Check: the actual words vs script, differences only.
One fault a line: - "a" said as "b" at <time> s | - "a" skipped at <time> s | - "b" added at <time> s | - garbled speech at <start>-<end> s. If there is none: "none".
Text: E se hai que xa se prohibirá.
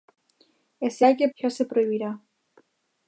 none